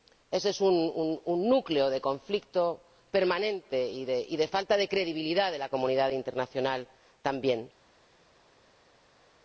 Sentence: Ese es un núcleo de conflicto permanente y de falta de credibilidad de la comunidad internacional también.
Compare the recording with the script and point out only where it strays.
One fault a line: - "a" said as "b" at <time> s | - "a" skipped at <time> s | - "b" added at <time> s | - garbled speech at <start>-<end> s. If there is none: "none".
none